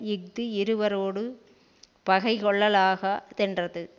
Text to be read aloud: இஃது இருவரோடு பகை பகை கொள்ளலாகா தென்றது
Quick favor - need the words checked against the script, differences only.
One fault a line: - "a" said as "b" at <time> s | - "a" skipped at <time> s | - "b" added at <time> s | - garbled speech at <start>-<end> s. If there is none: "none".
- "பகை" skipped at 2.3 s